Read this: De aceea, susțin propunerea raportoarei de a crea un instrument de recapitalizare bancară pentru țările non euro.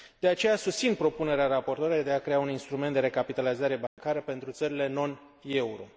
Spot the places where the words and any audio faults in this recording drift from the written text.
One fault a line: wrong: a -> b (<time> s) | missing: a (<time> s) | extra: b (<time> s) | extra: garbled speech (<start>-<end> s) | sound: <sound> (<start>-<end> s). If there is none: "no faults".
sound: dropout (3.9-4.0 s)